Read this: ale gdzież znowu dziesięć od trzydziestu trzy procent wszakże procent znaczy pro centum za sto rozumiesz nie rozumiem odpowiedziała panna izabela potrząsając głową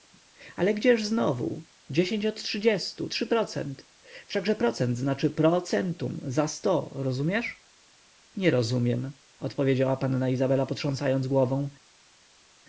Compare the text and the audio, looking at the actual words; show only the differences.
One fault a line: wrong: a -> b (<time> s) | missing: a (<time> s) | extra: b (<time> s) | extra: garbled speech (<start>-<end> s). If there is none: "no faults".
no faults